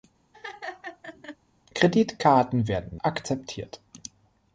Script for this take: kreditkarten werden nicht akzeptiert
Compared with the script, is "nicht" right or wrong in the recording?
wrong